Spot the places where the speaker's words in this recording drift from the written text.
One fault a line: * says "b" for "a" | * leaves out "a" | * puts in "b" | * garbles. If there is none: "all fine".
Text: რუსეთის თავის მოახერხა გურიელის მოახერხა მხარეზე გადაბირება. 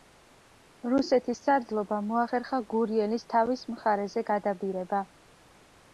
* says "სარდლობამ" for "თავის"
* says "თავის" for "მოახერხა"